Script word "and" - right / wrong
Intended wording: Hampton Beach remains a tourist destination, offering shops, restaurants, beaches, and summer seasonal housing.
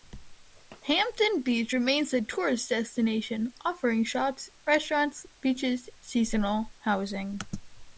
wrong